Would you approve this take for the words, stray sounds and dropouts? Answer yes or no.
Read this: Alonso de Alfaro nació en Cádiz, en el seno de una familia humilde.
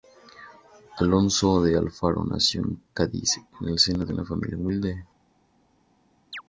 no